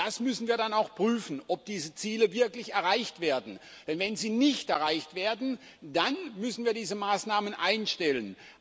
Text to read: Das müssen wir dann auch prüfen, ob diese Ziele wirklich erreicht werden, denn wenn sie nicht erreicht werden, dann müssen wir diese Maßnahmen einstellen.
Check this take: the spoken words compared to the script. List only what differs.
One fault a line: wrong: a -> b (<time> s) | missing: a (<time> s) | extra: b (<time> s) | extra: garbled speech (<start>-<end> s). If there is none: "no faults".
no faults